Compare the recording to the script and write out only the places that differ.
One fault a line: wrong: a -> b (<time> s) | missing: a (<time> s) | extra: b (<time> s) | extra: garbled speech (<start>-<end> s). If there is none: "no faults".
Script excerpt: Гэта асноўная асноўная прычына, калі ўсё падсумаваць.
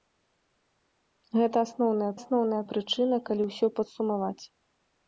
no faults